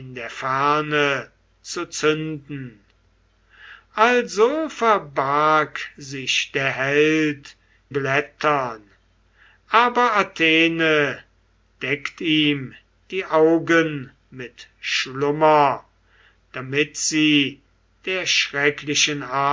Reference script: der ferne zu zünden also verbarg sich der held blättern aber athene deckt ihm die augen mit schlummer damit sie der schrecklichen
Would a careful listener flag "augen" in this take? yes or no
no